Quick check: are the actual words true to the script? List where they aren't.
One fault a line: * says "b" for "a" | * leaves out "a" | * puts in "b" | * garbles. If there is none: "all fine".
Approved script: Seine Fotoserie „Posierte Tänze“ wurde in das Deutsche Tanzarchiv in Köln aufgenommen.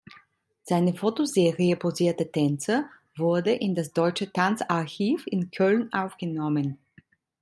all fine